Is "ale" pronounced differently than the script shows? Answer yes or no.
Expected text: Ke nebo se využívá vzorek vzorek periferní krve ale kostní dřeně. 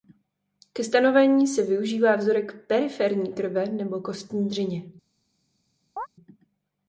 yes